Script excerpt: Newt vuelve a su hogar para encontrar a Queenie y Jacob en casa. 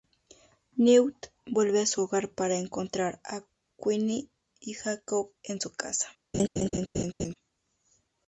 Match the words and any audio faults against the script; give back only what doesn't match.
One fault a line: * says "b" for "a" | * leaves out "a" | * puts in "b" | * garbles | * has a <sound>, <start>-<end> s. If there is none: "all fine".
* puts in "su"
* has a laugh, 6.3-7.3 s